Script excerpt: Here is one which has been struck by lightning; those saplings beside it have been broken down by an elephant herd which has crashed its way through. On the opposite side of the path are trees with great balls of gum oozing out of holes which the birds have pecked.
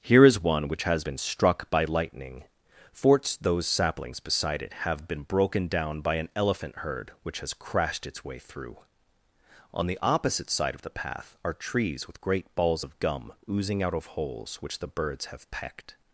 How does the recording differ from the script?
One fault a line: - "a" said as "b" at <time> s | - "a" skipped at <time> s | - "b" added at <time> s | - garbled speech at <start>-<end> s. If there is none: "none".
- "forts" added at 2.9 s